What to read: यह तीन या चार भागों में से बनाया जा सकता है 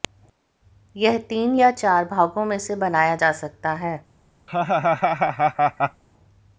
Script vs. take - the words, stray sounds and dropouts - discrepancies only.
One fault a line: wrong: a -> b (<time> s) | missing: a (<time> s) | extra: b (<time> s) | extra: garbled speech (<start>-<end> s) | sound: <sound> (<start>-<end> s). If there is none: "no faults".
sound: laugh (4.5-6.0 s)